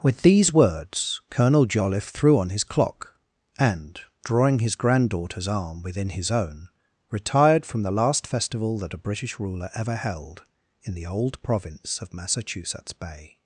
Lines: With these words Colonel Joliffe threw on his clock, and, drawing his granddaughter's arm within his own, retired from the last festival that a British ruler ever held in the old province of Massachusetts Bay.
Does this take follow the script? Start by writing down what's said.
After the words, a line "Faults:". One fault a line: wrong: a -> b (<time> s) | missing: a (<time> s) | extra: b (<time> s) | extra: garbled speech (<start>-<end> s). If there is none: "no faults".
With these words Colonel Joliffe threw on his clock, and, drawing his granddaughter's arm within his own, retired from the last festival that a British ruler ever held in the old province of Massachusetts Bay.
Faults:
no faults